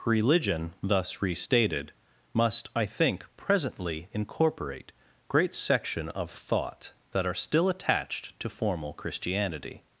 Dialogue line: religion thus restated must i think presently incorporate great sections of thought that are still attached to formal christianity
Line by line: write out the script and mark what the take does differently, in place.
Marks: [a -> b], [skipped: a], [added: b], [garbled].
religion thus restated must i think presently incorporate great [sections -> section] of thought that are still attached to formal christianity